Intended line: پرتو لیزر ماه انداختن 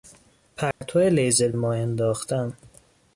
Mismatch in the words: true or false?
false